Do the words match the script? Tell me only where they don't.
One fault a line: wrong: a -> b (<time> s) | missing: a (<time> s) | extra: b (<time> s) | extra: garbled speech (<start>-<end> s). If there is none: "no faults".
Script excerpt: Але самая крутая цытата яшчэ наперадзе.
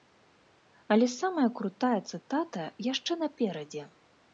no faults